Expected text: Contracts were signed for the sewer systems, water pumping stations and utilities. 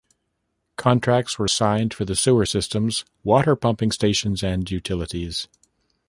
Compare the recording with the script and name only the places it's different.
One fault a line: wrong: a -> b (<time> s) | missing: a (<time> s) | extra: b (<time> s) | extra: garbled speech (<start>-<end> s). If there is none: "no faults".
no faults